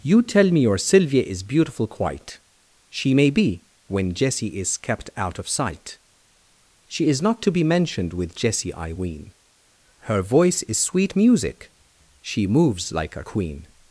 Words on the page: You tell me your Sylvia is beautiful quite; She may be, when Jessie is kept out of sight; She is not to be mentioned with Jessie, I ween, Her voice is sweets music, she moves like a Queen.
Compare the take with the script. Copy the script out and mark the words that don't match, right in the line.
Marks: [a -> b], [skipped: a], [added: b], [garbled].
You tell me your Sylvia is beautiful quite; She may be, when Jessie is kept out of sight; She is not to be mentioned with Jessie, I ween, Her voice is [sweets -> sweet] music, she moves like a Queen.